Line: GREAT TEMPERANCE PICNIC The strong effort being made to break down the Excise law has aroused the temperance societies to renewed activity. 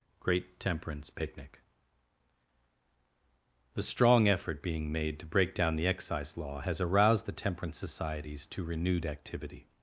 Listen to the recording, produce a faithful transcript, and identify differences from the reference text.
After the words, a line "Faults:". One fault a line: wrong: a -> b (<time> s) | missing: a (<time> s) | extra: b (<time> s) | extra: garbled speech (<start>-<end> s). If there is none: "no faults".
GREAT TEMPERANCE PICNIC The strong effort being made to break down the Excise law has aroused the temperance societies to renewed activity.
Faults:
no faults